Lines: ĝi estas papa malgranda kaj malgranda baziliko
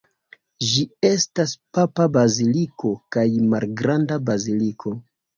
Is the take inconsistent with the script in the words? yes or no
yes